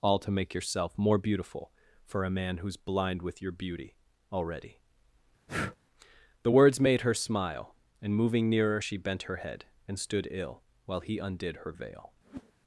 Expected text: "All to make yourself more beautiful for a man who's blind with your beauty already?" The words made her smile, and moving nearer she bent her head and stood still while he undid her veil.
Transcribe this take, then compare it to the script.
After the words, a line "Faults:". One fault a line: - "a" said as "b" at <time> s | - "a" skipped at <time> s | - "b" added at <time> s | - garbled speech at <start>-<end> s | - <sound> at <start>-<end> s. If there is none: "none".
"All to make yourself more beautiful for a man who's blind with your beauty already?" The words made her smile, and moving nearer she bent her head and stood ill while he undid her veil.
Faults:
- breath at 5.5-5.8 s
- "still" said as "ill" at 10.3 s
- whoosh at 12.2-12.5 s